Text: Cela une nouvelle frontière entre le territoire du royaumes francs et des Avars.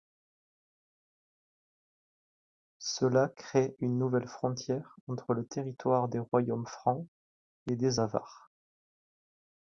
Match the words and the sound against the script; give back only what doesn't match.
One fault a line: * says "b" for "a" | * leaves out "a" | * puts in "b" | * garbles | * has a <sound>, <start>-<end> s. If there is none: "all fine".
* puts in "crée"
* says "des" for "du"